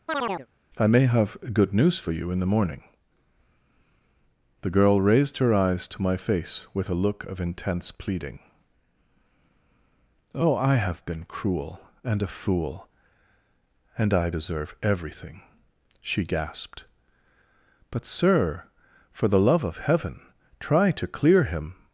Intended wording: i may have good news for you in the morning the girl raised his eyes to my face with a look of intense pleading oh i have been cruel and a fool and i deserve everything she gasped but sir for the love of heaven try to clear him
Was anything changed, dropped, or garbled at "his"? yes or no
yes